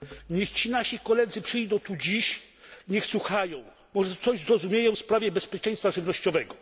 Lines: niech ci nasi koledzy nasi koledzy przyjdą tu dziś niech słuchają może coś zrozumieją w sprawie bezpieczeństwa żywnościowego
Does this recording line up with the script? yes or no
no